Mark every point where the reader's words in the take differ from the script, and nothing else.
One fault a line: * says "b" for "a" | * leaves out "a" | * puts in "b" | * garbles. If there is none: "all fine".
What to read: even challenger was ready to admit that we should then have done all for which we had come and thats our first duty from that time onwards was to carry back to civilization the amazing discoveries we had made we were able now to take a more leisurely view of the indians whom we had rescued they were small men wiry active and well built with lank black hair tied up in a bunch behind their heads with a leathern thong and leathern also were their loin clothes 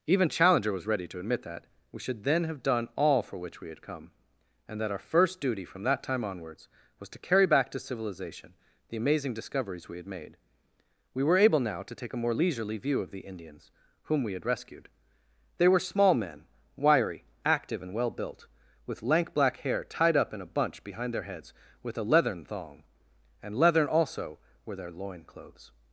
* says "that" for "thats"